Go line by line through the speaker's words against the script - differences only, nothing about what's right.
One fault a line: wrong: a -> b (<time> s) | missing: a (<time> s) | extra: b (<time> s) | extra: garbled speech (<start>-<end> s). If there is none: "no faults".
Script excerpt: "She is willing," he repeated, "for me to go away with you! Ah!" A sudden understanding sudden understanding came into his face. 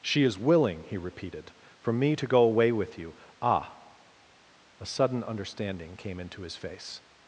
missing: sudden understanding (6.0 s)